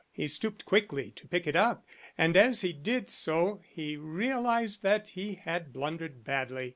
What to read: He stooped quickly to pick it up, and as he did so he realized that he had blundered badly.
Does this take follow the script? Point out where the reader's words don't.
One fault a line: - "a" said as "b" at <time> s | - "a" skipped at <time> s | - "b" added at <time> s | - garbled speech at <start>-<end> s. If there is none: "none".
none